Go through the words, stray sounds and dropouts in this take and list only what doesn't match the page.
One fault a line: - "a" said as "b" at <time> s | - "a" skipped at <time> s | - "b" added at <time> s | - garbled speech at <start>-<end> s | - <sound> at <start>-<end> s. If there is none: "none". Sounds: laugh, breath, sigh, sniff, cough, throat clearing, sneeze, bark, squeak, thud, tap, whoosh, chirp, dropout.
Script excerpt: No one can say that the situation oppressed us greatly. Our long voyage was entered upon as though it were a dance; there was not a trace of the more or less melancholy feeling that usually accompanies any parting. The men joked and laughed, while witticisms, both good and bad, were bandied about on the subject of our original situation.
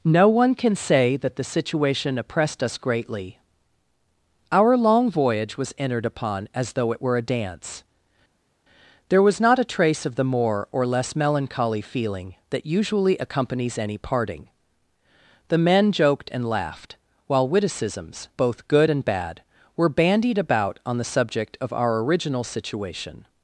none